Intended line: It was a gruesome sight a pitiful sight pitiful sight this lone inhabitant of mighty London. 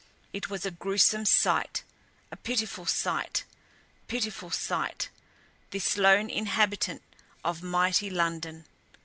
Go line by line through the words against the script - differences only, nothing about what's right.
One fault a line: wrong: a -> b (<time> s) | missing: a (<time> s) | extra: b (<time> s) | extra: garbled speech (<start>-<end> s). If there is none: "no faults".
no faults